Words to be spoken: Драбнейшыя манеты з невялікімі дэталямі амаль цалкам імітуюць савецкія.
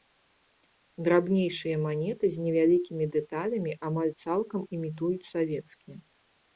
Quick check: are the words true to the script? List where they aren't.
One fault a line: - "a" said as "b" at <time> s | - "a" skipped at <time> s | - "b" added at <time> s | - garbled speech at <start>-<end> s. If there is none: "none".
none